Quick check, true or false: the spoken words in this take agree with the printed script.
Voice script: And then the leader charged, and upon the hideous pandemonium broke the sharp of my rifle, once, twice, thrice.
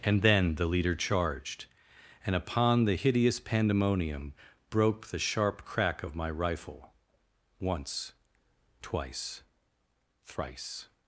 false